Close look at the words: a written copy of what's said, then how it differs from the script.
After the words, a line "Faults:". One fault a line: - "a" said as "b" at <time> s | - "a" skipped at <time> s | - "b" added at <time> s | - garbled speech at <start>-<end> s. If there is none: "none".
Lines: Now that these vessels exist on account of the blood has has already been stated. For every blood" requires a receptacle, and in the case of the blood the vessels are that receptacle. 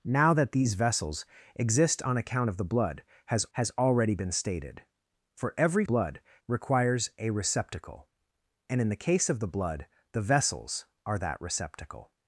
Now that these vessels exist on account of the blood has has already been stated. For every blood" requires a receptacle, and in the case of the blood the vessels are that receptacle.
Faults:
none